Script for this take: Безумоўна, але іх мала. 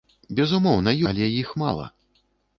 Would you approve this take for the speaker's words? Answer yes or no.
yes